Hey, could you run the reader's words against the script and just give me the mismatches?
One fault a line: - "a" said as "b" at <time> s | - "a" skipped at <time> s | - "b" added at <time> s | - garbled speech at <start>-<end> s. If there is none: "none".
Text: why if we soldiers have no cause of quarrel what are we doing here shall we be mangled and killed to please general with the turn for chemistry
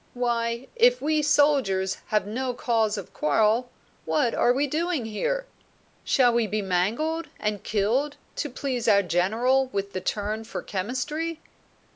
- "our" added at 8.9 s